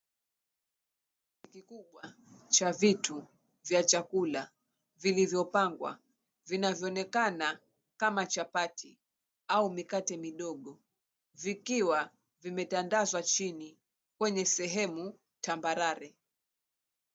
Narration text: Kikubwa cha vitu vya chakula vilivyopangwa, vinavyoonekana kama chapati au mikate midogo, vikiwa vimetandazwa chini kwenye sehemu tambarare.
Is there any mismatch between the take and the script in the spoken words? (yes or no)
no